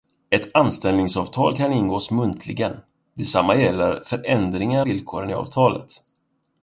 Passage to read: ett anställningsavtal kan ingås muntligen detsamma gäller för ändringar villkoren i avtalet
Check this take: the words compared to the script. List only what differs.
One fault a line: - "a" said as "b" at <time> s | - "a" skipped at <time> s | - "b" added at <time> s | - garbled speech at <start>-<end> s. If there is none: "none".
none